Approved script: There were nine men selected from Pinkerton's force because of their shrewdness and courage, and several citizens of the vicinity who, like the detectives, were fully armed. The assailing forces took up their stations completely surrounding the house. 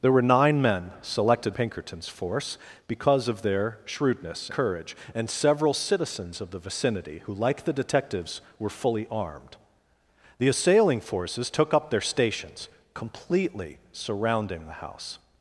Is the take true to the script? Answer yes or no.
no